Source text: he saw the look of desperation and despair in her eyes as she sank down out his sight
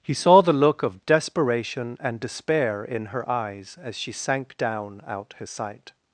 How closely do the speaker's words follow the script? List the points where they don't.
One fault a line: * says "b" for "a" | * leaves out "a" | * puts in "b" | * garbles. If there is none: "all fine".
all fine